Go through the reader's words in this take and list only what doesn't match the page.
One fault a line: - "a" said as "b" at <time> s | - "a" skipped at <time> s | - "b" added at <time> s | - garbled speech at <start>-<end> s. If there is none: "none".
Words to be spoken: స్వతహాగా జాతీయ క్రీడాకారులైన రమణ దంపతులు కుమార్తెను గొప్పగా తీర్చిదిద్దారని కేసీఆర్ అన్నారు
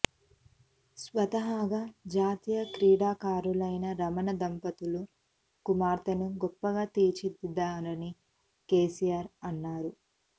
none